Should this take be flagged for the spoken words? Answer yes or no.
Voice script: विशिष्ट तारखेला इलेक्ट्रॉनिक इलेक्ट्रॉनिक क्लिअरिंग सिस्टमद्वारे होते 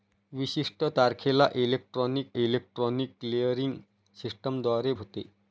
no